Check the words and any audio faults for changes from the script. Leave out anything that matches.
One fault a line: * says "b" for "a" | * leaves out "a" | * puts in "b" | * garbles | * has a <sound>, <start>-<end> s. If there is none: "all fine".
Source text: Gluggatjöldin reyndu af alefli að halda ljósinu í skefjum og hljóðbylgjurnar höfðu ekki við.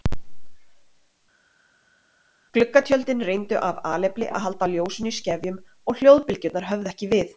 all fine